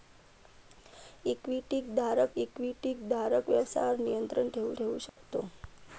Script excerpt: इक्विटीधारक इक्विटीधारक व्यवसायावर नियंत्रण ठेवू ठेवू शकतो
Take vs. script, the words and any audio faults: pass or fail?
fail